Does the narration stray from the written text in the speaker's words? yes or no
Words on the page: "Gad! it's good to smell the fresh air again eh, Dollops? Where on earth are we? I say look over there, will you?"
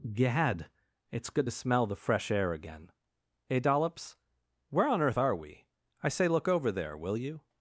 no